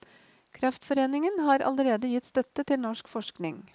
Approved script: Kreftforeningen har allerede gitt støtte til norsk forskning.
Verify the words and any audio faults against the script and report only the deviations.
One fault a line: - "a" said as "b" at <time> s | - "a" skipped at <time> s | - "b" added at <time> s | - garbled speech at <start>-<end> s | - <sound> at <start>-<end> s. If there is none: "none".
none